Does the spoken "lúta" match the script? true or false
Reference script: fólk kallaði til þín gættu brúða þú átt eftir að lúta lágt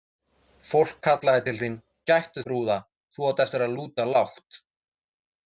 true